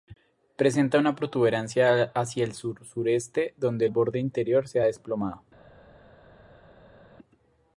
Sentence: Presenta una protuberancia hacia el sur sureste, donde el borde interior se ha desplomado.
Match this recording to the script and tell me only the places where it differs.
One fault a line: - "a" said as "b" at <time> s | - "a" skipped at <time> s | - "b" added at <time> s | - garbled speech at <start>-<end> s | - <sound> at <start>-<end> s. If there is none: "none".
none